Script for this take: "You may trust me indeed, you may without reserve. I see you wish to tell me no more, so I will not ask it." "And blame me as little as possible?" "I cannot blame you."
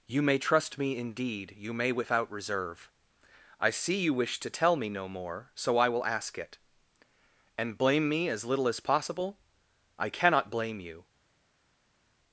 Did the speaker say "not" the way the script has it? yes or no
no